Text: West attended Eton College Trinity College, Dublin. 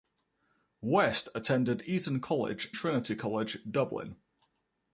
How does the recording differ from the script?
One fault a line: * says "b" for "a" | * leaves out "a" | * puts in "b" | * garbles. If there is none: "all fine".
all fine